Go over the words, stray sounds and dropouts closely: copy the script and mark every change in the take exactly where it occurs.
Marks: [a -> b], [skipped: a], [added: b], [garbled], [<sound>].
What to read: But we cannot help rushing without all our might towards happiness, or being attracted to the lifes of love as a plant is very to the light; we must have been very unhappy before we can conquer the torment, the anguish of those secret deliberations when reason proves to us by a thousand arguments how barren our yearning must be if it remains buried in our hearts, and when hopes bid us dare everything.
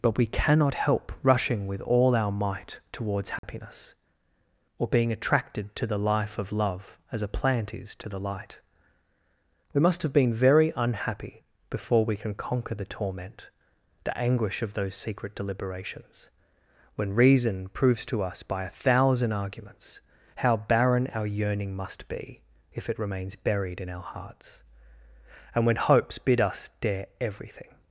But we cannot help rushing [without -> with] all our might towards happiness, [dropout] or being attracted to the [lifes -> life] of love as a plant is [skipped: very] to the light; we must have been very unhappy before we can conquer the torment, the anguish of those secret deliberations when reason proves to us by a thousand arguments how barren our yearning must be if it remains buried in our hearts, and when hopes bid us dare everything.